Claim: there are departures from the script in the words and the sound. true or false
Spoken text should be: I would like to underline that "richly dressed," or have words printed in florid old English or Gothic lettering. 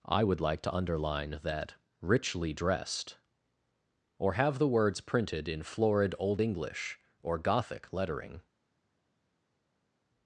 true